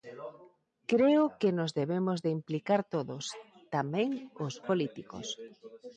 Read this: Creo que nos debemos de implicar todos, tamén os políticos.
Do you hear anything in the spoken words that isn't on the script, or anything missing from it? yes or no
no